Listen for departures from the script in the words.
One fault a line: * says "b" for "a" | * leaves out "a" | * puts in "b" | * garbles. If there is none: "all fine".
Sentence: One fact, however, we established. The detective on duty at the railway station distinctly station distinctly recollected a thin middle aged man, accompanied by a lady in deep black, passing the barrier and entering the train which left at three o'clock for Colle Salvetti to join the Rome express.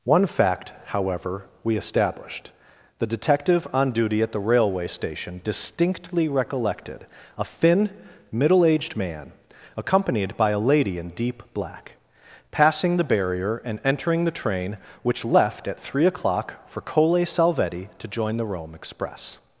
* leaves out "station distinctly"